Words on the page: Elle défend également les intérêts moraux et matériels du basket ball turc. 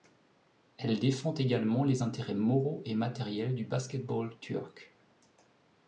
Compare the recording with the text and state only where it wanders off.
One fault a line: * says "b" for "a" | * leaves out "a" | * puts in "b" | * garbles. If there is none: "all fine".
all fine